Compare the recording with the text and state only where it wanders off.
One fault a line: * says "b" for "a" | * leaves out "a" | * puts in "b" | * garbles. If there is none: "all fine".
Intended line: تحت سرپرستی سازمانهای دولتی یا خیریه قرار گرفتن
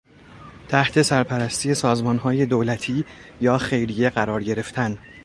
all fine